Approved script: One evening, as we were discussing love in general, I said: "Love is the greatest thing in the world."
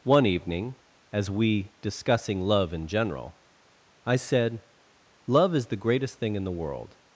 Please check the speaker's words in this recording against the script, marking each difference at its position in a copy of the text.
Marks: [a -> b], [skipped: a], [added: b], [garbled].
One evening, as we [skipped: were] discussing love in general, I said: "Love is the greatest thing in the world."